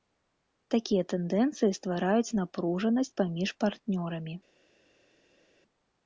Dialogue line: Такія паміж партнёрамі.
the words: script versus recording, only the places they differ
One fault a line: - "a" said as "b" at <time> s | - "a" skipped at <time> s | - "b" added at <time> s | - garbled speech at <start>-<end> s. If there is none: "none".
- "тэндэнцыі ствараюць напружанасць" added at 1.1 s